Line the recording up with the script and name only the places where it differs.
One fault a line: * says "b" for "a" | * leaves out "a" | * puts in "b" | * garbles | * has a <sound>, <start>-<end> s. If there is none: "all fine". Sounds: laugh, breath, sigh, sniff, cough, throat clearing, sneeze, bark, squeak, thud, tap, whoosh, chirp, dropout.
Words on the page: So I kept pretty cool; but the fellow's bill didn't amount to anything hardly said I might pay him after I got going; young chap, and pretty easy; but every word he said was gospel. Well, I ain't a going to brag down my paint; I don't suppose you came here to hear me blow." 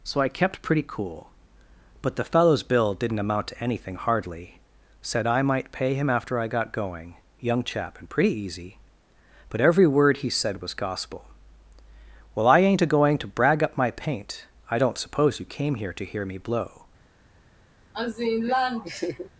* says "up" for "down"
* has a laugh, 17.9-19.3 s